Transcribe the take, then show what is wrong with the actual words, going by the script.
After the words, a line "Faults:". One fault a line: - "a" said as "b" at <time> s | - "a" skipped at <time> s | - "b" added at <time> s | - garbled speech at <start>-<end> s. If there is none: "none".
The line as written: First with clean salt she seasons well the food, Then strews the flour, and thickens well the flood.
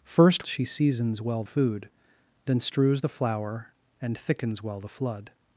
First she seasons well food, Then strews the flour, and thickens well the flood.
Faults:
- "with clean salt" skipped at 0.5 s
- "the" skipped at 1.4 s